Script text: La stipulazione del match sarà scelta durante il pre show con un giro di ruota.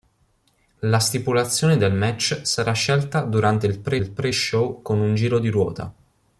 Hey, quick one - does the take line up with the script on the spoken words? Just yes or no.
no